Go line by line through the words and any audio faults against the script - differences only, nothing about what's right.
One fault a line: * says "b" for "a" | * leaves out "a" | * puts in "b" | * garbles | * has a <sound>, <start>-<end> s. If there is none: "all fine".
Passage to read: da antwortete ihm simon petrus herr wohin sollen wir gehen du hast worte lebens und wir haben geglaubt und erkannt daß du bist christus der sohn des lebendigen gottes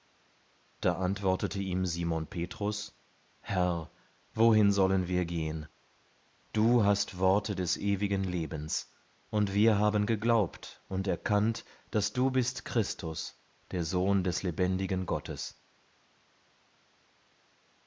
* puts in "des ewigen"